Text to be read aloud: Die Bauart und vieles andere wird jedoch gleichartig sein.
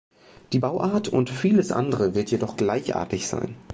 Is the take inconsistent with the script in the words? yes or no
no